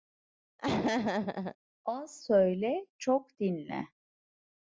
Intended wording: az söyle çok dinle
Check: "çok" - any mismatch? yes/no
no